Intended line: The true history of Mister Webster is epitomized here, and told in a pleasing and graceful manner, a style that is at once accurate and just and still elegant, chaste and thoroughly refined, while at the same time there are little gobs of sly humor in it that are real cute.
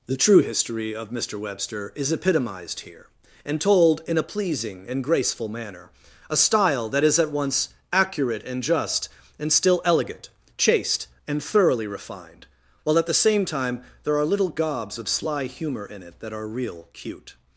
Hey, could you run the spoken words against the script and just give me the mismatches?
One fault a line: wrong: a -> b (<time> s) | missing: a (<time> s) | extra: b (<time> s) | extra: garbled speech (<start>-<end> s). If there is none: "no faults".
no faults